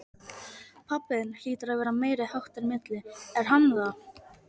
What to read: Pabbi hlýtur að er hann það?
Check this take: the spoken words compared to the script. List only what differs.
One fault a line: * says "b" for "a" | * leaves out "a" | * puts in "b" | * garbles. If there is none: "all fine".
* puts in "þinn"
* puts in "vera meiriháttar milli"